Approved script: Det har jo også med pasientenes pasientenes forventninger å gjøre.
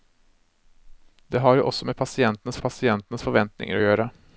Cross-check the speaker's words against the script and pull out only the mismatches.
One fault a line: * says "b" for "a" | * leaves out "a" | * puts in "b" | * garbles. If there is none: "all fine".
all fine